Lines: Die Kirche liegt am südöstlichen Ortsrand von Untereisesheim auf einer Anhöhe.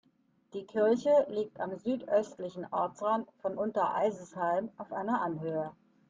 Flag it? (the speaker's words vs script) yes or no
no